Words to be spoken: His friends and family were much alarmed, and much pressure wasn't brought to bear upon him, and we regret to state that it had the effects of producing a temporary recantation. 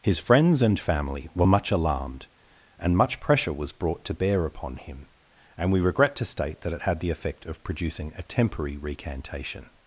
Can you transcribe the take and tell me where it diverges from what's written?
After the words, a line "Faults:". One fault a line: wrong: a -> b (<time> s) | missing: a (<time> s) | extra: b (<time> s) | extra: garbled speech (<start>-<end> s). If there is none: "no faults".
His friends and family were much alarmed, and much pressure was brought to bear upon him, and we regret to state that it had the effect of producing a temporary recantation.
Faults:
wrong: wasn't -> was (3.5 s)
wrong: effects -> effect (7.1 s)